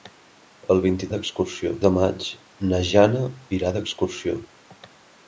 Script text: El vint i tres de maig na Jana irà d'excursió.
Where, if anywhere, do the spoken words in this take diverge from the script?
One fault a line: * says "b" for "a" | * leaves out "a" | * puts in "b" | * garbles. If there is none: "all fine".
* says "d'excursió" for "tres"